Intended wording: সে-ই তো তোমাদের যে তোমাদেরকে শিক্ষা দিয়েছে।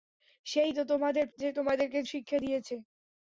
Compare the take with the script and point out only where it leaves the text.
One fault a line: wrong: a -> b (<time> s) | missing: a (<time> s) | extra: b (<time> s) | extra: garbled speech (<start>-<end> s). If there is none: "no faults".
no faults